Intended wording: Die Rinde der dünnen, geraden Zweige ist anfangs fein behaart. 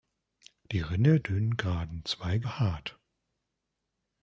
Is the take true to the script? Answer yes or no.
no